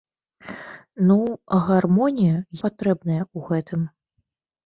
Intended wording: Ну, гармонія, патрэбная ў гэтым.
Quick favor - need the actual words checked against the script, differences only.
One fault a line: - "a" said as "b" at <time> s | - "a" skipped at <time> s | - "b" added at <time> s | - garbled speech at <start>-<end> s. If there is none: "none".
none